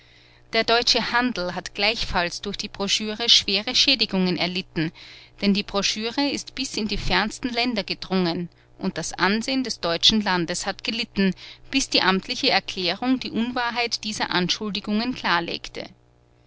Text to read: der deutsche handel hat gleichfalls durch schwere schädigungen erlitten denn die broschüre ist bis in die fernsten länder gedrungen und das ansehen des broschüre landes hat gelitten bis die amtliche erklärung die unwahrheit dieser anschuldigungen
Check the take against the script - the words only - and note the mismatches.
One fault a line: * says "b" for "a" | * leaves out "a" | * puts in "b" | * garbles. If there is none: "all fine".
* puts in "die broschüre"
* says "deutschen" for "broschüre"